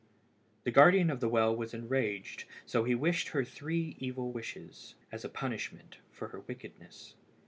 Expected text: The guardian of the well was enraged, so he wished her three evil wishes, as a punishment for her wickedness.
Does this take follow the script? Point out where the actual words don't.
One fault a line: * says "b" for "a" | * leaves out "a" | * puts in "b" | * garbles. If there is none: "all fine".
all fine